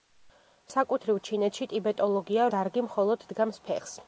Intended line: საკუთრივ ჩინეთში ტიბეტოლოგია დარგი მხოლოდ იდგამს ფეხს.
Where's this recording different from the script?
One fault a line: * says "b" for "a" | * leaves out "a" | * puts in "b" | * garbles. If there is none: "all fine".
all fine